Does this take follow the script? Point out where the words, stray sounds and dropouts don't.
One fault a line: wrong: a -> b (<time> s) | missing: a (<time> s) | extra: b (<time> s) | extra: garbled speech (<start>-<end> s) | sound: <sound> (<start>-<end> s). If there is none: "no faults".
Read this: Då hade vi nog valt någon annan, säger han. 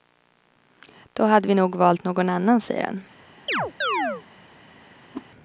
sound: chirp (3.5-4.2 s)
sound: whoosh (5.1-5.3 s)